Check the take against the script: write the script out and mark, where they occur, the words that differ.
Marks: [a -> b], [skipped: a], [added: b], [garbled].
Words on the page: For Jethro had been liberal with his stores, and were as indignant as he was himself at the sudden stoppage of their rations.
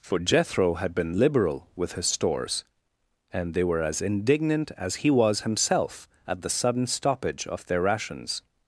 For Jethro had been liberal with his stores, and [added: they] were as indignant as he was himself at the sudden stoppage of their rations.